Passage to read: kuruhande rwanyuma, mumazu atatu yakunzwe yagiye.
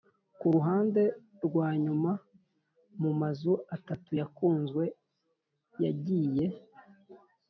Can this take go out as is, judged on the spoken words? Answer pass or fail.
pass